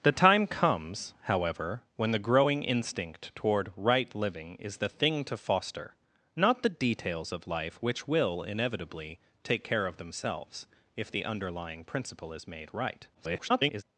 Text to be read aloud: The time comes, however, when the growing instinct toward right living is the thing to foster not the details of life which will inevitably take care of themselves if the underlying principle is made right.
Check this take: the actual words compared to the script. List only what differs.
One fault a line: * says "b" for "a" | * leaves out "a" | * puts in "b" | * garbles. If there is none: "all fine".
* garbles